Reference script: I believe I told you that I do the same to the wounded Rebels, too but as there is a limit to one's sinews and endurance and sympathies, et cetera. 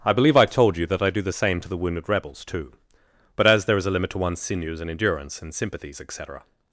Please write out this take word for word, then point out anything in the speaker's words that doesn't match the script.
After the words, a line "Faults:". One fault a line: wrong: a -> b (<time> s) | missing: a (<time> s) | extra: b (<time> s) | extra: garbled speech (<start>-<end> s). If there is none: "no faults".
I believe I told you that I do the same to the wounded Rebels, too but as there is a limit to one's sinews and endurance and sympathies, et cetera.
Faults:
no faults